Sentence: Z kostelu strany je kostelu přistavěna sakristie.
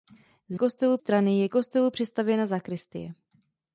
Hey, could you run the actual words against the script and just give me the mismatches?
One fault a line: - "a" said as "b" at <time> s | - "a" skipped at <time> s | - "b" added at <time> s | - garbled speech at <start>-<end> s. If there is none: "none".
none